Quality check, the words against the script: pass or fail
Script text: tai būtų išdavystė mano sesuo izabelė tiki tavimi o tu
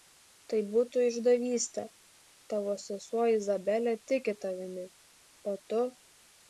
fail